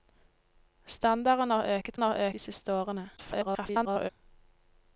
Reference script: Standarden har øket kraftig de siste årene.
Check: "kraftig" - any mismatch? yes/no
yes